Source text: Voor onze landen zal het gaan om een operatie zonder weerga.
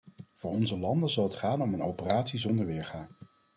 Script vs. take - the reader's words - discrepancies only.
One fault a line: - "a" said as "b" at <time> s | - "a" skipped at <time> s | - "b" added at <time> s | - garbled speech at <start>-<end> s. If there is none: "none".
none